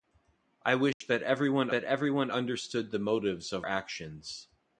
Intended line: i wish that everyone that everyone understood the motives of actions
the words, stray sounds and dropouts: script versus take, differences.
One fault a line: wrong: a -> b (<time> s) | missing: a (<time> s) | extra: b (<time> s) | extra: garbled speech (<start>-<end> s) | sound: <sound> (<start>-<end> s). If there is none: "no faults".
sound: dropout (0.9-1.0 s)